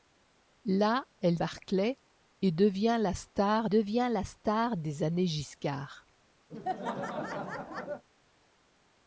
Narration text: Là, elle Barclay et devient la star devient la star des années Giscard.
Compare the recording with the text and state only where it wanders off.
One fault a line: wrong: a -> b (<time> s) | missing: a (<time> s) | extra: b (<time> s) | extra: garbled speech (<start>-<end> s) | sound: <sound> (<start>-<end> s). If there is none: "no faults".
sound: laugh (6.5-8.0 s)